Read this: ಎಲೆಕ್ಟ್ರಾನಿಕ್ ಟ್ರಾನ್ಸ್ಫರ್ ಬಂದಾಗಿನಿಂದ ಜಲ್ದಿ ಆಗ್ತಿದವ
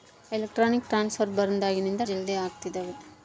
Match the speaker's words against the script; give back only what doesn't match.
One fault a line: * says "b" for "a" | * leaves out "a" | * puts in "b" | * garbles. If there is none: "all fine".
all fine